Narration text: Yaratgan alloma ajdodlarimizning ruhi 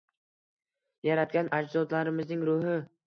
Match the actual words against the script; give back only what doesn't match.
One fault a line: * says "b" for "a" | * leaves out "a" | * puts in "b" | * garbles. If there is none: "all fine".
* leaves out "alloma"